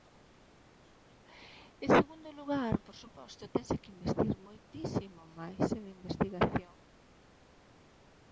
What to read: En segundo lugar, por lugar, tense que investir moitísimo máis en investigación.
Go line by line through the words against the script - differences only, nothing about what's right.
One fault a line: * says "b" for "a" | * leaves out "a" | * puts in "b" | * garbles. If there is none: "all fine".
* says "suposto" for "lugar"